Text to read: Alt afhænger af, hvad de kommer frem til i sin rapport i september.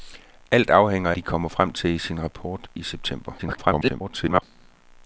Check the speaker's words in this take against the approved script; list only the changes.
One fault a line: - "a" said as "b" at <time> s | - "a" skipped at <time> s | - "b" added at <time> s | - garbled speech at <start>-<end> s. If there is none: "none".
- "af hvad" skipped at 1.1 s
- garbled speech at 3.4-4.4 s